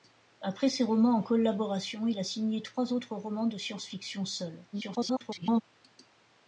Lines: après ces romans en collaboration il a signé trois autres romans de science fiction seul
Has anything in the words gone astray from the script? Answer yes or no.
yes